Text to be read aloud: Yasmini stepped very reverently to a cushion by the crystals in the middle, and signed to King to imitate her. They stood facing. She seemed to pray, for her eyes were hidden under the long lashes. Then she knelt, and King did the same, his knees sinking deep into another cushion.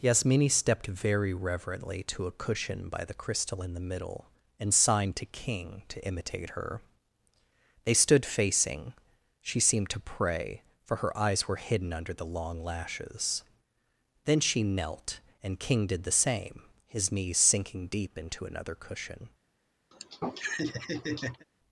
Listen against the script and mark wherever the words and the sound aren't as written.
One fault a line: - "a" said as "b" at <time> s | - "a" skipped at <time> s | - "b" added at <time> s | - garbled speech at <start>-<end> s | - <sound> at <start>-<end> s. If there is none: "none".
- "crystals" said as "crystal" at 3.1 s
- laugh at 19.9-21.4 s